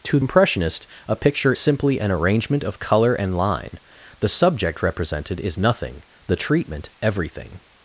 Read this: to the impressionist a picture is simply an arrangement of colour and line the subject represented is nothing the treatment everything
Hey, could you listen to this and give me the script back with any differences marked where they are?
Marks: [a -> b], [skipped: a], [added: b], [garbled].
to [skipped: the] impressionist a picture [skipped: is] simply an arrangement of colour and line the subject represented is nothing the treatment everything